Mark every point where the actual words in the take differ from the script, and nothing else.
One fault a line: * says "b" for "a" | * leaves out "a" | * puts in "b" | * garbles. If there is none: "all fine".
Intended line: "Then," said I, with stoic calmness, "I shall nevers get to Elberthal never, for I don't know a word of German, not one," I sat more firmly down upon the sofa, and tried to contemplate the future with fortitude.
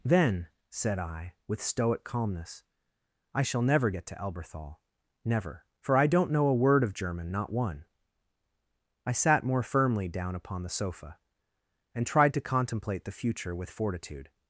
* says "never" for "nevers"